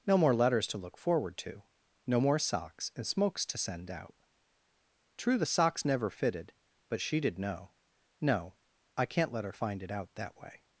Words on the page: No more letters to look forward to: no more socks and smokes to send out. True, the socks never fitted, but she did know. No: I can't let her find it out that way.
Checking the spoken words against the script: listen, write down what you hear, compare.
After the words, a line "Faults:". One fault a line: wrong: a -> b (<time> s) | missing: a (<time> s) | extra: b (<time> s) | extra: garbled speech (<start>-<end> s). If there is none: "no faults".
No more letters to look forward to: no more socks and smokes to send out. True, the socks never fitted, but she did know. No: I can't let her find it out that way.
Faults:
no faults